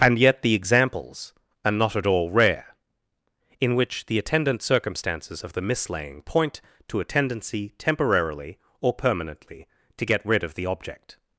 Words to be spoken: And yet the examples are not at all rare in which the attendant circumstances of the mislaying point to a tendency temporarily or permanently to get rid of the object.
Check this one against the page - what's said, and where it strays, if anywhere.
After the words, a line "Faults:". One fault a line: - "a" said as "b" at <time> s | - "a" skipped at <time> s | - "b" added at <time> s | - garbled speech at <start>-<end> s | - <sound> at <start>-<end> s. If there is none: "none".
And yet the examples are not at all rare in which the attendant circumstances of the mislaying point to a tendency temporarily or permanently to get rid of the object.
Faults:
none